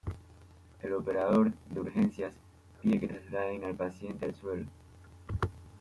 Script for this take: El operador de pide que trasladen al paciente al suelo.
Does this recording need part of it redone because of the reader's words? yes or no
yes